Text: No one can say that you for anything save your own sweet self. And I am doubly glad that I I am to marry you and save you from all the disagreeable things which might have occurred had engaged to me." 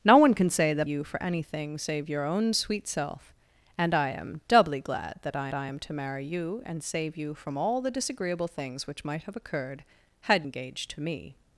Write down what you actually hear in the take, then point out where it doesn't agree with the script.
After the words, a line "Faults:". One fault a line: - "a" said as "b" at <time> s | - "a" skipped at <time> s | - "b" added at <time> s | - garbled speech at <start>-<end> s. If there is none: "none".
No one can say that you for anything save your own sweet self. And I am doubly glad that I I am to marry you and save you from all the disagreeable things which might have occurred had engaged to me."
Faults:
none